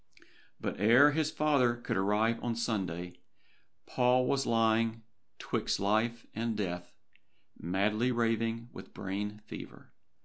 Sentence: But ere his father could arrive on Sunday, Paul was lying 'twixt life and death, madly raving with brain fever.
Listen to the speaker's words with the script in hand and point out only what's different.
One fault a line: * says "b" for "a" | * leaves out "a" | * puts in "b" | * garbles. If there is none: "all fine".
all fine